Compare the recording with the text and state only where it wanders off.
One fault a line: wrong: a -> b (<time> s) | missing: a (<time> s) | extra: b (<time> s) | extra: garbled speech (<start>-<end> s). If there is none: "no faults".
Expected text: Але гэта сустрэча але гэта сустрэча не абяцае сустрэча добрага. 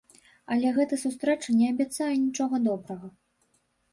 missing: але гэта сустрэча (1.6 s)
wrong: сустрэча -> нічога (2.3 s)